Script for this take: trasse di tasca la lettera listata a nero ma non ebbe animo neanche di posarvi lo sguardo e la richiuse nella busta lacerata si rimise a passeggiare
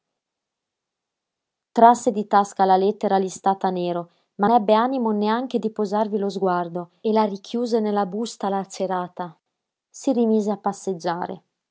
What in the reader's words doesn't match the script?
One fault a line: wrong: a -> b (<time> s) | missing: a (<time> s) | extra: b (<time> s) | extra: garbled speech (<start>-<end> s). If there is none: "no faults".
missing: non (4.5 s)